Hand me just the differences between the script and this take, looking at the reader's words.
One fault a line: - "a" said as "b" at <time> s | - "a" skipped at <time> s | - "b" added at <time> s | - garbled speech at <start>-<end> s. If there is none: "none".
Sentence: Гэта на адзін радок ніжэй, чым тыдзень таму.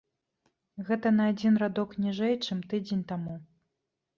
none